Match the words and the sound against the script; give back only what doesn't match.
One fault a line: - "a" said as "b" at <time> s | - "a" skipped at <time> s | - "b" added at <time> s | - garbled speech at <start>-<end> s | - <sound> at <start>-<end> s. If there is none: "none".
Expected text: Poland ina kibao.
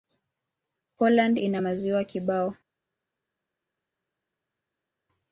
- "maziwa" added at 1.6 s